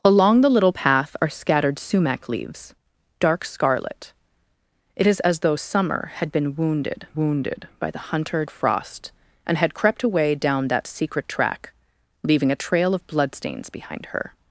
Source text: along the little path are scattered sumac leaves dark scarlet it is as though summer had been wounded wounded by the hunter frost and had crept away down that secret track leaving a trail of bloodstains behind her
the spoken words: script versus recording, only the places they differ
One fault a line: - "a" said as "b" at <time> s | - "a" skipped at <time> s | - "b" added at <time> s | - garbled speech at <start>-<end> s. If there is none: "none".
none